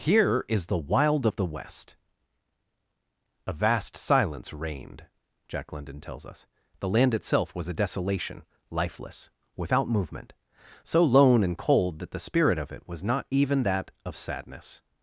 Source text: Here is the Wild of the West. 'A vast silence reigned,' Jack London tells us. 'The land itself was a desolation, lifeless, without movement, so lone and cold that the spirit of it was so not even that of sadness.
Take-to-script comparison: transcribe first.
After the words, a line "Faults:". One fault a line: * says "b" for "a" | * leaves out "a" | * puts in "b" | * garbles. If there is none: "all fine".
Here is the Wild of the West. 'A vast silence reigned,' Jack London tells us. 'The land itself was a desolation, lifeless, without movement, so lone and cold that the spirit of it was not even that of sadness.
Faults:
* leaves out "so"